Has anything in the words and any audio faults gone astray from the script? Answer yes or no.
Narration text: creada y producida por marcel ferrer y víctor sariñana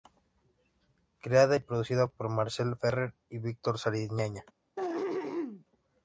yes